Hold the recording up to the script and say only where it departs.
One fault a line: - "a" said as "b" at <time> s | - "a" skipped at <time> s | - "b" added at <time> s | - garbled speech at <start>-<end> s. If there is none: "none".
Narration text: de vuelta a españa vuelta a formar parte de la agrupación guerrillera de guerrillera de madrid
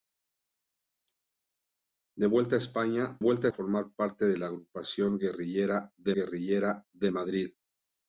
none